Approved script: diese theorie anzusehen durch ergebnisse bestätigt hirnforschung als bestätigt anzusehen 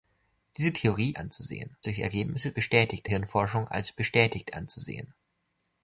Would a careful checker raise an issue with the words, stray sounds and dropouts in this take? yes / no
no